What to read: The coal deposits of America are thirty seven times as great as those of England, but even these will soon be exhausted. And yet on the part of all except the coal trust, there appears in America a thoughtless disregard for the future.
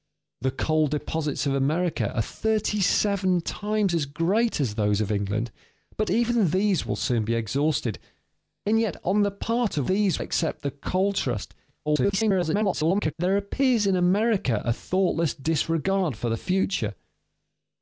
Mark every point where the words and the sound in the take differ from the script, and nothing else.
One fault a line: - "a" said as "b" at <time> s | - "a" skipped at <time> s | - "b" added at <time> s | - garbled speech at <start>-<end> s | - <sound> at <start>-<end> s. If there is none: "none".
- "all" said as "these" at 9.9 s
- garbled speech at 11.9-13.1 s